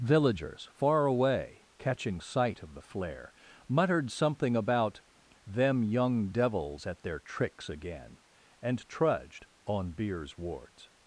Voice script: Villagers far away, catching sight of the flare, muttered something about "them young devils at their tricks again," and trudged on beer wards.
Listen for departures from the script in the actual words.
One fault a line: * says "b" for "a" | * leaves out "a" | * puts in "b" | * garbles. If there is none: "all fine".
* says "beers" for "beer"